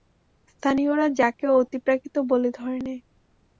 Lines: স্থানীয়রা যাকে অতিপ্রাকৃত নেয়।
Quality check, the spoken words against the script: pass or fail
fail